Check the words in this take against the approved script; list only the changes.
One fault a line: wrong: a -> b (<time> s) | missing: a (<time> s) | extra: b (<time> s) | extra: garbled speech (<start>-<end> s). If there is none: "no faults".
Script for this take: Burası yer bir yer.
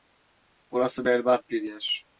wrong: yer -> berbat (1.1 s)